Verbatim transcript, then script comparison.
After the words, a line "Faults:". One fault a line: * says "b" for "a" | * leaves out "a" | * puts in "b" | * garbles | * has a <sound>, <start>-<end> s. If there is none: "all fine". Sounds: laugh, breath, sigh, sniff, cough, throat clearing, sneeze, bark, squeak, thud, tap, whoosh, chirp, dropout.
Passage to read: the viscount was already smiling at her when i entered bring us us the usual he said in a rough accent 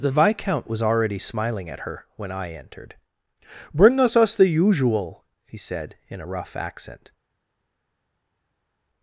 the viscount was already smiling at her when i entered bring us us the usual he said in a rough accent
Faults:
all fine